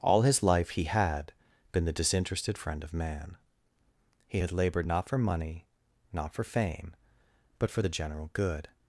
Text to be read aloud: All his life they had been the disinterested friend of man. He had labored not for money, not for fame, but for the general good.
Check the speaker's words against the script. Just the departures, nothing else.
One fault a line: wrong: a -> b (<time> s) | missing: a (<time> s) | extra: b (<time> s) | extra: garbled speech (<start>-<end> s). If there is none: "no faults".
wrong: they -> he (0.7 s)